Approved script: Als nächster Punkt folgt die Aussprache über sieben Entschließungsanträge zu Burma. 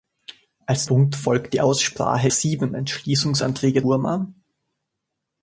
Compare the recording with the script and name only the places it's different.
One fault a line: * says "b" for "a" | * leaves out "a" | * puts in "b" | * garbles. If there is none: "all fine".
* leaves out "nächster"
* leaves out "über"
* leaves out "zu"